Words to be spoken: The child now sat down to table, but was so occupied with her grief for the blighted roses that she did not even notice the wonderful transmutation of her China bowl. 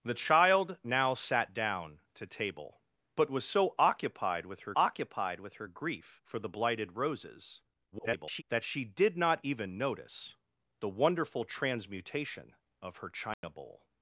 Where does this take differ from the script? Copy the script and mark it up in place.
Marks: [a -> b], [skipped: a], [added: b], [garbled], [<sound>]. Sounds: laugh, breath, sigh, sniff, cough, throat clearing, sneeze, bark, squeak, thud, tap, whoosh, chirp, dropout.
The child now sat down to table, but was so occupied with her [added: occupied with her] grief for the blighted roses [garbled] that she did not even notice the wonderful transmutation of her China [dropout] bowl.